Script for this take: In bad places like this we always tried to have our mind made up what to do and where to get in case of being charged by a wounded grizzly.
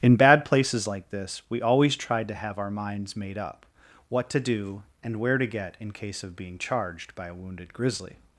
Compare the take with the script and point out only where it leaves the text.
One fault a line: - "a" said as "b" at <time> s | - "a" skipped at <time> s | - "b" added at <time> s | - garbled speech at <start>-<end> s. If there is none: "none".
- "mind" said as "minds" at 2.7 s